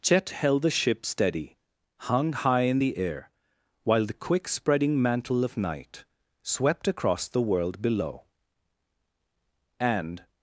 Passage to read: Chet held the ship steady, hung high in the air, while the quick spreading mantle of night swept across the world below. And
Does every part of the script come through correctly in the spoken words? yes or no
yes